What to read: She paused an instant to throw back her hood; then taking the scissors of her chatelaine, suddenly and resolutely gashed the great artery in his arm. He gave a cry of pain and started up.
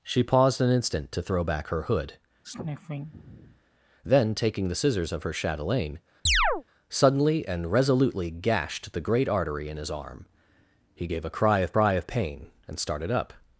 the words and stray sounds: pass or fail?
fail